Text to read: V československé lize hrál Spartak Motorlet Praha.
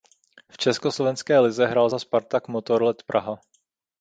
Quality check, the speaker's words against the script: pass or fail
fail